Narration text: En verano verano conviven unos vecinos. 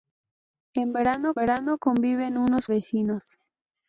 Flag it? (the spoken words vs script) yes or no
no